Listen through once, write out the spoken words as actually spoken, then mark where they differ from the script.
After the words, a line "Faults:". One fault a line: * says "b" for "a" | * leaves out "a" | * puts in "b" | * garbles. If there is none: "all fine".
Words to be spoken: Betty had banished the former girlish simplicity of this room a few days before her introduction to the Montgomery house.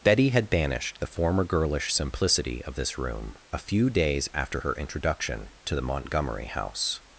Betty had banished the former girlish simplicity of this room a few days after her introduction to the Montgomery house.
Faults:
* says "after" for "before"